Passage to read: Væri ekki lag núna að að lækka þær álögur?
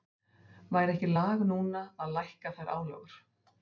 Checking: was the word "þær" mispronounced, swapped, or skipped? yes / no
no